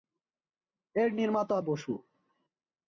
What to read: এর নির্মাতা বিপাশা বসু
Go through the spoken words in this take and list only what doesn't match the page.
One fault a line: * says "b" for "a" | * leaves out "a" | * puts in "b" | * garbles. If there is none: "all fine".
* leaves out "বিপাশা"